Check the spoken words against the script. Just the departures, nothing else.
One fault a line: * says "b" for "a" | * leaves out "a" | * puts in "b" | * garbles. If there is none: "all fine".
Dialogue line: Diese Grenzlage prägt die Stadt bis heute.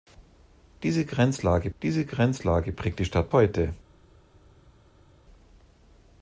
* puts in "diese Grenzlage"
* leaves out "bis"